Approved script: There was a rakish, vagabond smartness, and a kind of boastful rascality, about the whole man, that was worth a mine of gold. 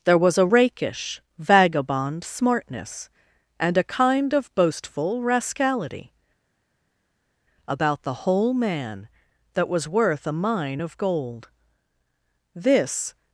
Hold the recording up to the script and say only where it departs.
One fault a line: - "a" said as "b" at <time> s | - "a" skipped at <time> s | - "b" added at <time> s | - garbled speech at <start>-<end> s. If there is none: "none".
- "This" added at 12.5 s